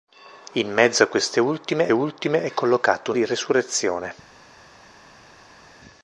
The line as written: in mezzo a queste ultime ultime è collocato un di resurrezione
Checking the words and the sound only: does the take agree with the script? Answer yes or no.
yes